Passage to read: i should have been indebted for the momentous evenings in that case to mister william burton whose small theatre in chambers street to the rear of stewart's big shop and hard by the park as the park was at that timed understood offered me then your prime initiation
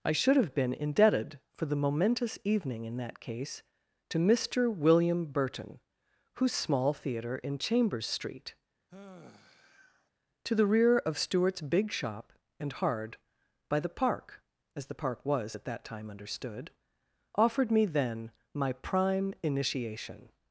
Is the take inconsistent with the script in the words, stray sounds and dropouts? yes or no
yes